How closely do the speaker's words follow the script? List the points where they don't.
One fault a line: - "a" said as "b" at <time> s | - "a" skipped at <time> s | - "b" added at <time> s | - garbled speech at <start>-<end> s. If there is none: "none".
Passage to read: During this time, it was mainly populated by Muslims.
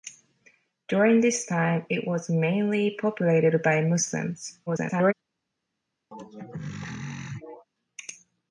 - garbled speech at 4.7-5.1 s